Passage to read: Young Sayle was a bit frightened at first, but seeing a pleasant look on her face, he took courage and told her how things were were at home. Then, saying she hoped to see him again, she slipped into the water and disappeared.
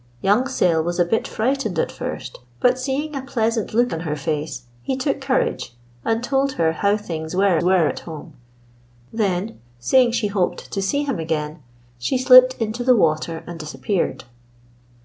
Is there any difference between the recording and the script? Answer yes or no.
no